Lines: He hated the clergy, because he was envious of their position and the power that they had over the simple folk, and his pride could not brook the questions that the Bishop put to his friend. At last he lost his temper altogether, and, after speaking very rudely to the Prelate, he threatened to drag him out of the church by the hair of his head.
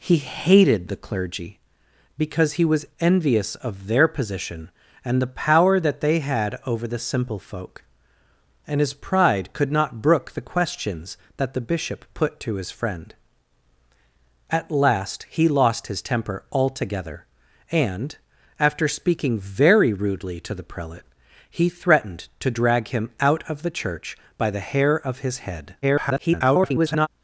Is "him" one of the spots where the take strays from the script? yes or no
no